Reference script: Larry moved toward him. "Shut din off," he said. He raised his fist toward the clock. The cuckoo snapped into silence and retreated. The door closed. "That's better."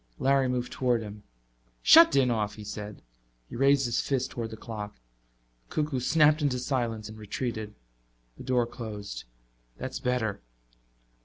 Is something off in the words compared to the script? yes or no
no